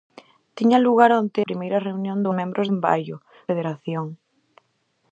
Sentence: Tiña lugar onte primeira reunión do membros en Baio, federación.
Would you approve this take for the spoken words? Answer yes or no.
yes